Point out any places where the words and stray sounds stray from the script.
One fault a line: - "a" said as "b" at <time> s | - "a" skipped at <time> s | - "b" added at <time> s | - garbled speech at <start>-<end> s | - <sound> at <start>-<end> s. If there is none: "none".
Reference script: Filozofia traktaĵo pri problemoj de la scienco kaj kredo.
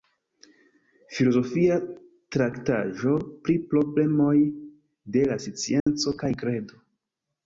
- dropout at 5.8-5.9 s